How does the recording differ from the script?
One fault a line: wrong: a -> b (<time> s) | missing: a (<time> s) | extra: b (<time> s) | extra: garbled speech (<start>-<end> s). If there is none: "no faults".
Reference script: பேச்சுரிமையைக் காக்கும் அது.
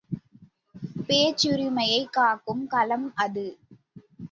extra: களம் (2.7 s)